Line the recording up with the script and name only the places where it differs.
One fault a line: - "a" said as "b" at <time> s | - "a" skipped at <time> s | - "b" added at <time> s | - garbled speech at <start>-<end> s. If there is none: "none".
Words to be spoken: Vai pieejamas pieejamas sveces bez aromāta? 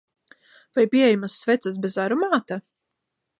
- "pieejamas" skipped at 1.4 s